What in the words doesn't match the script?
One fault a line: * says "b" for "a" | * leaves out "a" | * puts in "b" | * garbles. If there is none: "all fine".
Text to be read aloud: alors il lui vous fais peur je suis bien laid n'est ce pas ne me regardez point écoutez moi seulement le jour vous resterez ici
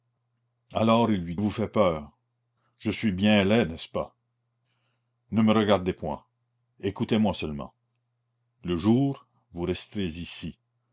all fine